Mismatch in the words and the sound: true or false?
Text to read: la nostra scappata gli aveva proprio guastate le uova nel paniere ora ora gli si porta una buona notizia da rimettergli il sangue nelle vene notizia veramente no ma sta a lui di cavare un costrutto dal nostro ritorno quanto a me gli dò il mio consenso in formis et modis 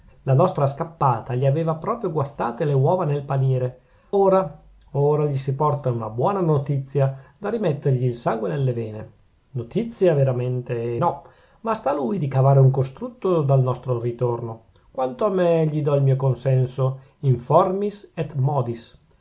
false